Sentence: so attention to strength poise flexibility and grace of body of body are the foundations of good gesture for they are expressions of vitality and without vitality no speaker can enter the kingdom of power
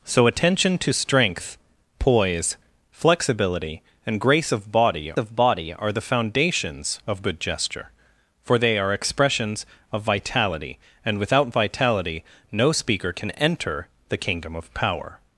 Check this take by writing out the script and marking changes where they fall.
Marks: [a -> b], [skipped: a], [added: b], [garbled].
so attention to strength poise flexibility and grace of body of body are the foundations of good gesture for they are expressions of vitality and without vitality no speaker can enter the kingdom of power